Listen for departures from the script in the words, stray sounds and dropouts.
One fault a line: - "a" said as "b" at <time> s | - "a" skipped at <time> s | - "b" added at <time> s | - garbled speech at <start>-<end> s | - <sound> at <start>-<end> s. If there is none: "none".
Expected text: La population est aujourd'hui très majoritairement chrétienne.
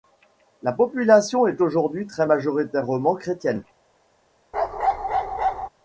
- bark at 4.5-5.7 s